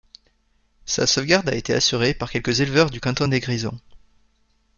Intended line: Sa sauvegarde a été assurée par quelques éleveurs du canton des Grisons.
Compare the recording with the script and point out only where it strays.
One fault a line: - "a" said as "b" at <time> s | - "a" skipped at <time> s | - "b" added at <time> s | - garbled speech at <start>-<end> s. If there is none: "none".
none